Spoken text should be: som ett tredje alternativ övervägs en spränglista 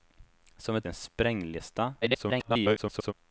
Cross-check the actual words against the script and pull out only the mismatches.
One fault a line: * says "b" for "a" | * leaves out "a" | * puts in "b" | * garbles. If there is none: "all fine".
* leaves out "tredje alternativ övervägs"
* garbles